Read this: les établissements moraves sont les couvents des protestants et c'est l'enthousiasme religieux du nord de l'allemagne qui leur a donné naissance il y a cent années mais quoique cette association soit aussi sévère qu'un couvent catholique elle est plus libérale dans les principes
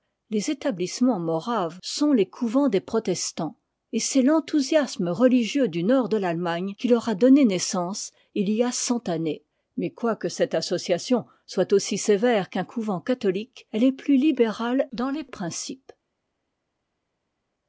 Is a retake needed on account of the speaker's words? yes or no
no